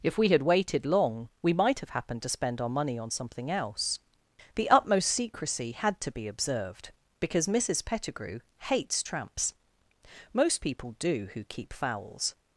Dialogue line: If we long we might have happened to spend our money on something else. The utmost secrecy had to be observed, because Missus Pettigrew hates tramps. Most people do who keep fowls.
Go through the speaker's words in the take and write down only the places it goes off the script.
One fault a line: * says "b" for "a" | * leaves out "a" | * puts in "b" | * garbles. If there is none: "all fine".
* puts in "had waited"